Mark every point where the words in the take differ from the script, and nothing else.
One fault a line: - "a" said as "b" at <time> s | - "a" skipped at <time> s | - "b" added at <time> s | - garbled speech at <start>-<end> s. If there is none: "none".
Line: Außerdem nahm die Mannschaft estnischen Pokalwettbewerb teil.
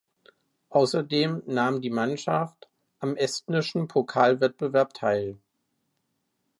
- "am" added at 3.0 s